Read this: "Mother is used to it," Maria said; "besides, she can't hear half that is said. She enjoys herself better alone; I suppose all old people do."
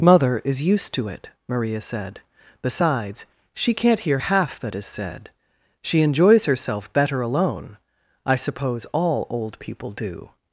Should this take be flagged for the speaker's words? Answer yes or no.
no